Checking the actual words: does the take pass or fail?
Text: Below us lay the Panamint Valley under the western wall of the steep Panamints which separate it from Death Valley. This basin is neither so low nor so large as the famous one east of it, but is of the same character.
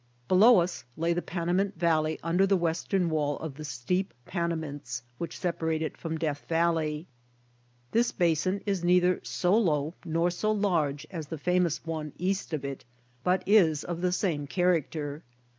pass